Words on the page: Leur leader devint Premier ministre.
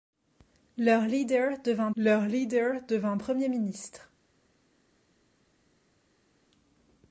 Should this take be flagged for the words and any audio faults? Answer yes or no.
yes